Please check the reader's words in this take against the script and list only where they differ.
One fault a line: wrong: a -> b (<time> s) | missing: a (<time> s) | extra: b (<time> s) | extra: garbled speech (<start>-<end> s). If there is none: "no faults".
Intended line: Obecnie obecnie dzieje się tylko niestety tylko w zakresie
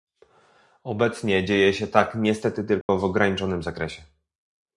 missing: obecnie (1.4 s)
wrong: tylko -> tak (1.9 s)
extra: ograniczonym (3.0 s)